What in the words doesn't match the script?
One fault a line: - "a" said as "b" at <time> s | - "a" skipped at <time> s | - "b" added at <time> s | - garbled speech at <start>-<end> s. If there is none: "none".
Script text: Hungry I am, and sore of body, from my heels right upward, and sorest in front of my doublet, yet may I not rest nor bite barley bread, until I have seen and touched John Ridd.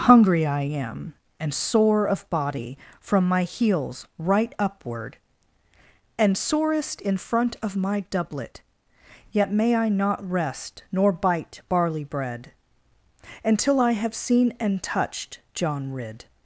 none